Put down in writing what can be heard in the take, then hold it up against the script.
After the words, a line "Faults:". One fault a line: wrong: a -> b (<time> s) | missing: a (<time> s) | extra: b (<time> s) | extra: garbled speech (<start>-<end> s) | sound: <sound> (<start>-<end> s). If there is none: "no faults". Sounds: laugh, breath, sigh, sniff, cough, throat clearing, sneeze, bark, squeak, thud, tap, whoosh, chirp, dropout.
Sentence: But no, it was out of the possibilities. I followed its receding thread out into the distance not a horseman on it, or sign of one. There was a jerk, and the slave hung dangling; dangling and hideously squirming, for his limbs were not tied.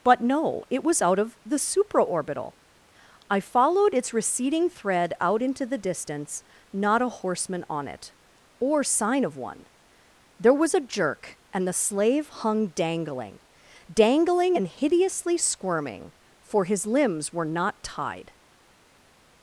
But no, it was out of the supraorbital. I followed its receding thread out into the distance not a horseman on it, or sign of one. There was a jerk, and the slave hung dangling; dangling and hideously squirming, for his limbs were not tied.
Faults:
wrong: possibilities -> supraorbital (1.6 s)